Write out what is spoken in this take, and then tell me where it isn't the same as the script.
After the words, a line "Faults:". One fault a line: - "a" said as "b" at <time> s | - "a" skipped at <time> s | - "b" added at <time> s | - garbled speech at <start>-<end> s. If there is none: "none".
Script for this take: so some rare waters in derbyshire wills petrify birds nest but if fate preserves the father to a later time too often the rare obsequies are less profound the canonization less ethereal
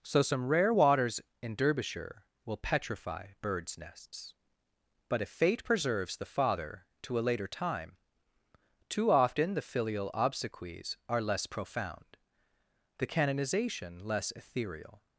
so some rare waters in derbyshire will petrify birds nests but if fate preserves the father to a later time too often the filial obsequies are less profound the canonization less ethereal
Faults:
- "wills" said as "will" at 2.5 s
- "nest" said as "nests" at 3.8 s
- "rare" said as "filial" at 9.6 s